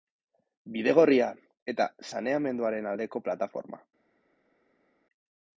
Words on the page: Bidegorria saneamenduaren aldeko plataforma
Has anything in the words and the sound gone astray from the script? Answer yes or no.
yes